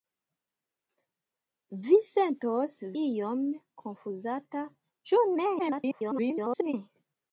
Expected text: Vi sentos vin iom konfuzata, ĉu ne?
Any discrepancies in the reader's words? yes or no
yes